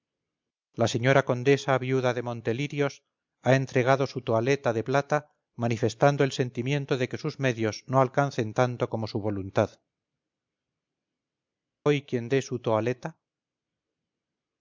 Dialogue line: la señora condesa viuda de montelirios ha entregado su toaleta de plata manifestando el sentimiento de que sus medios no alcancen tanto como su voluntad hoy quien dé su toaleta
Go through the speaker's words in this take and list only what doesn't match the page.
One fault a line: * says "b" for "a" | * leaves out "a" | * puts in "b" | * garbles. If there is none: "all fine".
all fine